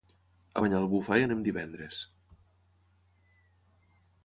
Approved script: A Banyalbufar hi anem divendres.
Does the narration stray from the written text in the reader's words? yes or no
no